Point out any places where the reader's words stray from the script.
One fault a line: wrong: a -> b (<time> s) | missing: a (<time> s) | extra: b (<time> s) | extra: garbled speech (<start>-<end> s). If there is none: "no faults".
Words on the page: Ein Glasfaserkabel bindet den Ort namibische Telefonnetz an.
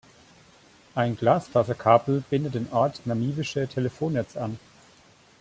no faults